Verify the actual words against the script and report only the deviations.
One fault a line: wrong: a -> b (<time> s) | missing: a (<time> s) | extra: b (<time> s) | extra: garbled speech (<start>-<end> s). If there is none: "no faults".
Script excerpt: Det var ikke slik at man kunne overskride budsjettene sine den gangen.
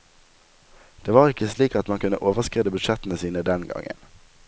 no faults